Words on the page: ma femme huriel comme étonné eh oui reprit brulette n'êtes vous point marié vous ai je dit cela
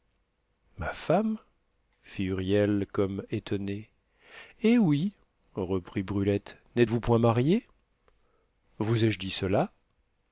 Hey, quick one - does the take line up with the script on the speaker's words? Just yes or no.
no